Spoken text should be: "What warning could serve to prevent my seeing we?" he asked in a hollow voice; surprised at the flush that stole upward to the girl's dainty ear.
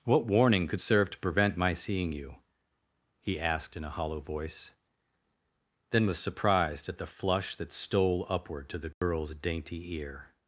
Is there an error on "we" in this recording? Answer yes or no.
yes